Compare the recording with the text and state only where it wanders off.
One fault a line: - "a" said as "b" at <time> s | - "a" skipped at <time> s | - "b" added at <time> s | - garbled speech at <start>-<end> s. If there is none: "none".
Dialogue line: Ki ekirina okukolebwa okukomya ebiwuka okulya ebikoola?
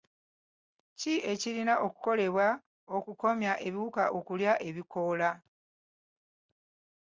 none